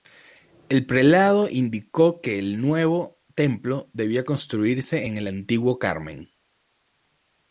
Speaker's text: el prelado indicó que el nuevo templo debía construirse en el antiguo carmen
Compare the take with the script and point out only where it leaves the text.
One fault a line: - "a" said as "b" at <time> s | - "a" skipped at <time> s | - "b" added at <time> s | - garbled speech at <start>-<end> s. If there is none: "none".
none